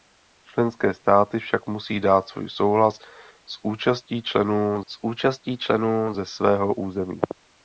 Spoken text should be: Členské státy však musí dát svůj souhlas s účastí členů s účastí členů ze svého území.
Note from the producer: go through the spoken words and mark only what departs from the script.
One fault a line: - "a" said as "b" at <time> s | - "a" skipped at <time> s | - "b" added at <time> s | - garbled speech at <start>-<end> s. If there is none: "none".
none